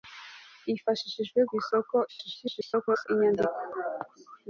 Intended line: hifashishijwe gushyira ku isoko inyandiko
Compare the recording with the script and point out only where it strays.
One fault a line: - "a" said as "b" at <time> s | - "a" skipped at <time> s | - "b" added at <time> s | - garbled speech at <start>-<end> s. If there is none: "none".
- "gushyira" skipped at 1.4 s
- garbled speech at 2.1-3.1 s